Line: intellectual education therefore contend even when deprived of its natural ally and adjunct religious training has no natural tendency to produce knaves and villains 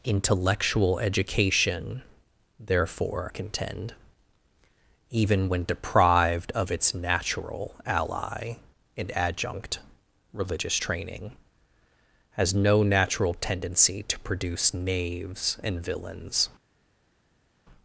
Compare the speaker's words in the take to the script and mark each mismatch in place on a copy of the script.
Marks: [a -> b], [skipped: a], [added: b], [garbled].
intellectual education therefore contend even when deprived of its natural ally and adjunct religious training has no natural tendency to produce knaves and villains